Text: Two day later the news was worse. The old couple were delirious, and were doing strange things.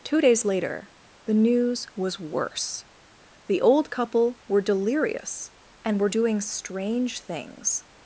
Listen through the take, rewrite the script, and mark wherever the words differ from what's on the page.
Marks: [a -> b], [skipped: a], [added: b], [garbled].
Two [day -> days] later the news was worse. The old couple were delirious, and were doing strange things.